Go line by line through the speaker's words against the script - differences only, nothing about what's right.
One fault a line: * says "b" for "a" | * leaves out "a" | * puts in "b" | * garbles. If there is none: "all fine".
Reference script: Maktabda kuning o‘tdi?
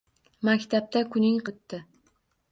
all fine